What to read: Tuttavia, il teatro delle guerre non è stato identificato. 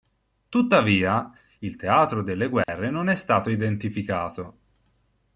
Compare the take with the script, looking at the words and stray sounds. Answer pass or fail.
fail